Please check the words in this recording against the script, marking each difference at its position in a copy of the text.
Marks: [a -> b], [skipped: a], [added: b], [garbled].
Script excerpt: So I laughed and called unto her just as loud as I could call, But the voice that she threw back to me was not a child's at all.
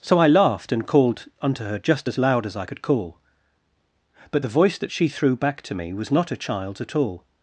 So I laughed and called unto her just as loud as I could call, But the voice that she threw back to me was not a child's at all.